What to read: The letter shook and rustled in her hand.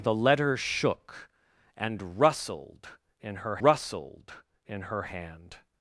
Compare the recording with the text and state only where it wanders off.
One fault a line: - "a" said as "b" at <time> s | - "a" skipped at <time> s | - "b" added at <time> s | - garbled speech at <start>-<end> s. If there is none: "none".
- "rustled in her" added at 3.6 s